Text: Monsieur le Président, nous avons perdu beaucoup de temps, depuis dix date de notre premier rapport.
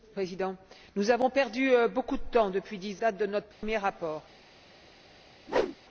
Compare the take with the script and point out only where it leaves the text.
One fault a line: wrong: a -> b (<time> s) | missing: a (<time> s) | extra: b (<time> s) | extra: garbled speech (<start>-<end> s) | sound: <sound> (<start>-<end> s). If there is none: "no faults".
sound: dropout (3.5-3.6 s)
sound: whoosh (5.5-5.8 s)